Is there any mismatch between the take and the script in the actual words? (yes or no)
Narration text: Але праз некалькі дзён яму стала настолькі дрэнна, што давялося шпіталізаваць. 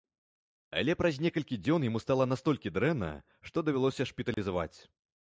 no